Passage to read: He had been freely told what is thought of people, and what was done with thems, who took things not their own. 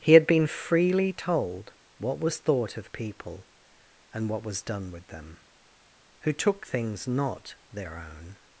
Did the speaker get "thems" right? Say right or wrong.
wrong